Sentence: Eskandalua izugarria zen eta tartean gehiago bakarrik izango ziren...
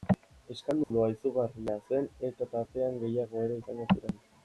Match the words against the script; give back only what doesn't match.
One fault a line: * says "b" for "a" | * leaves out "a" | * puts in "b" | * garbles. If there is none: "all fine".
* says "ere" for "bakarrik"